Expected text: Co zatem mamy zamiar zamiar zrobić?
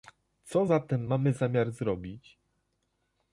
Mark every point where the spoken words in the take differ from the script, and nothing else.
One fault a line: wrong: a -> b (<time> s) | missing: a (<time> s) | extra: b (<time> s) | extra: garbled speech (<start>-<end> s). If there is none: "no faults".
missing: zamiar (1.7 s)